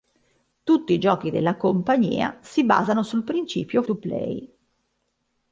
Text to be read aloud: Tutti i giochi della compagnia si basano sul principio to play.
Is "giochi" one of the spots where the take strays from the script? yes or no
no